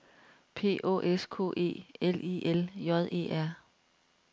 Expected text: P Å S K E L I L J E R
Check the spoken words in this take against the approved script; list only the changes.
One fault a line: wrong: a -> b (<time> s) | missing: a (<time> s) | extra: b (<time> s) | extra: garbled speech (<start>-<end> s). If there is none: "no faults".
no faults